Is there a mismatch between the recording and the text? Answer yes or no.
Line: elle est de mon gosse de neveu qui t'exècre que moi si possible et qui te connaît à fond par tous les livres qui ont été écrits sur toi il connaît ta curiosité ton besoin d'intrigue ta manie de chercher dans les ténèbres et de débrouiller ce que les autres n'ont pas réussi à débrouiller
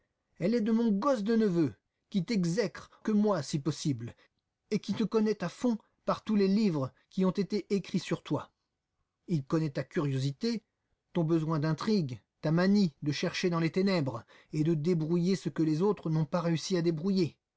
no